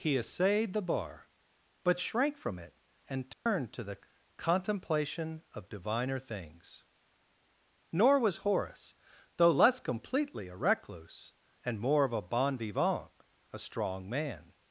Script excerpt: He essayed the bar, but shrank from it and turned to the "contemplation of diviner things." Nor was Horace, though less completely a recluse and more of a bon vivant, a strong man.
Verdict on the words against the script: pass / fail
pass